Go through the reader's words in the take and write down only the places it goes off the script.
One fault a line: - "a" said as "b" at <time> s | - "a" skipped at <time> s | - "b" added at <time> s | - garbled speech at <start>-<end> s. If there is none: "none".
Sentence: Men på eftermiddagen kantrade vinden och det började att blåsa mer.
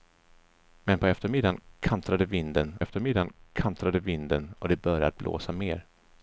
- "eftermiddagen kantrade vinden" added at 2.8 s